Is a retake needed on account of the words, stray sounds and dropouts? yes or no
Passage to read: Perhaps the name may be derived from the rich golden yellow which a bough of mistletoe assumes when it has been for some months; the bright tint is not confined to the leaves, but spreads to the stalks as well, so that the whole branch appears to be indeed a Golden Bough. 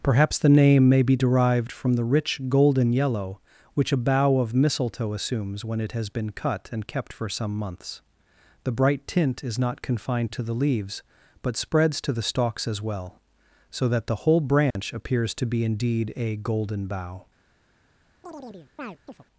yes